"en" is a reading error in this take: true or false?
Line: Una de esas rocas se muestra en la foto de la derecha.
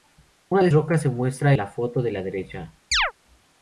true